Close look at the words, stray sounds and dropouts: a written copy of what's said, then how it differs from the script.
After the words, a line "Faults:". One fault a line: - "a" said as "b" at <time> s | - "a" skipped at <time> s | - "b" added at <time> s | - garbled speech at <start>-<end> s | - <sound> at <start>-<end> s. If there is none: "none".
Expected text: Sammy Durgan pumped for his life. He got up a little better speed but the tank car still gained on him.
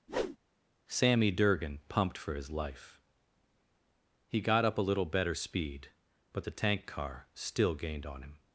Sammy Durgan pumped for his life. He got up a little better speed but the tank car still gained on him.
Faults:
- whoosh at 0.1-0.4 s